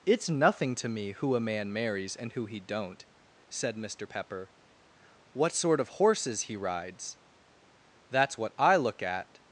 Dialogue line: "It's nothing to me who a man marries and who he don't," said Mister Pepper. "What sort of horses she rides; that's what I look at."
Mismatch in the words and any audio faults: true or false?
true